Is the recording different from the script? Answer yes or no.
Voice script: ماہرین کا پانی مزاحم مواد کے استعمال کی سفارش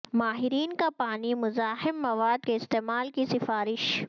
no